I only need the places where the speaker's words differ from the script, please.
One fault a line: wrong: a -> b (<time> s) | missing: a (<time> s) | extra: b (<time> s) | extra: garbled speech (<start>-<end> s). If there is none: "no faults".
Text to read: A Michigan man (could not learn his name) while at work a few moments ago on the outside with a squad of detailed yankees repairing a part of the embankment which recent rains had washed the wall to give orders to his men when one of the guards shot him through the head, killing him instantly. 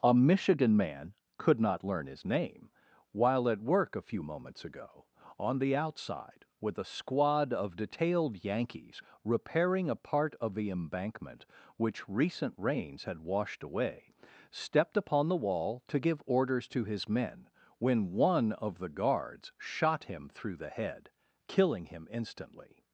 extra: away stepped upon (13.6 s)